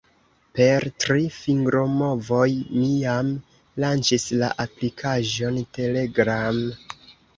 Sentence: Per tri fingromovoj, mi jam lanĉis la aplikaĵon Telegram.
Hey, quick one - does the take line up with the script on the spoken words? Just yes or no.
yes